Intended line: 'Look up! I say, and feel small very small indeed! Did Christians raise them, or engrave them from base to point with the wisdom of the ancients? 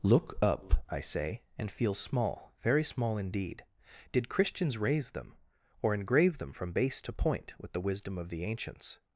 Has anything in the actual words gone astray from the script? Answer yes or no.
no